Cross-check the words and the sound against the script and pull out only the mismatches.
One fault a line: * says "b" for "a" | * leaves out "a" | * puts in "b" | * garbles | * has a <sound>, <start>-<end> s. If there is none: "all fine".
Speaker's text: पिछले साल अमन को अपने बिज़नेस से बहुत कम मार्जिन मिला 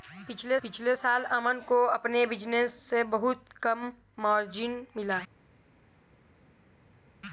* puts in "पिछले"